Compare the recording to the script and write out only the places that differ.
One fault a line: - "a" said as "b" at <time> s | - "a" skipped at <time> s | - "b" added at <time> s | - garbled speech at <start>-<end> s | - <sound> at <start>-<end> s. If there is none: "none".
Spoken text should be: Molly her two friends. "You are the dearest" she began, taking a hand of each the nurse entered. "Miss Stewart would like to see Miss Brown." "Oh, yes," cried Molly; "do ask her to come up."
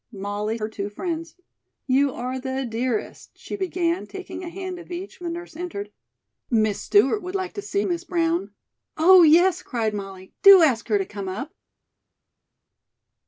none